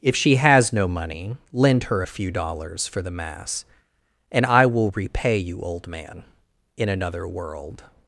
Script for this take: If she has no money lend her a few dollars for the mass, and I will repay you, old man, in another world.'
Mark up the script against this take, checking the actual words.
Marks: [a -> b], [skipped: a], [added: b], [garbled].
If she has no money lend her a few dollars for the mass, and I will repay you, old man, in another world.'